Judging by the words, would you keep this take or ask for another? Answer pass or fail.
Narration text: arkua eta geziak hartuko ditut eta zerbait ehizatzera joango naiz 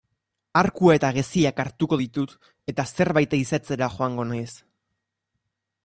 pass